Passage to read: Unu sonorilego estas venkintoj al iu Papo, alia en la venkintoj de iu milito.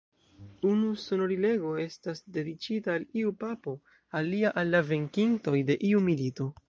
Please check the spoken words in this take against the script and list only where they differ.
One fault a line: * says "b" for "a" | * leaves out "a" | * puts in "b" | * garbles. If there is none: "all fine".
* says "dediĉita" for "venkintoj"
* says "al" for "en"